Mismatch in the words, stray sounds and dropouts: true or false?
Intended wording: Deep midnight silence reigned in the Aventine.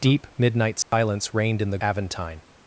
true